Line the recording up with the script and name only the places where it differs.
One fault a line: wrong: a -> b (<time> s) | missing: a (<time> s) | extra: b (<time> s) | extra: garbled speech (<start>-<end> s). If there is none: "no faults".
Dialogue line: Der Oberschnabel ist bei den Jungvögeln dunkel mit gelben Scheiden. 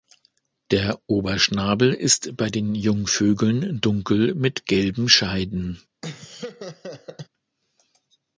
no faults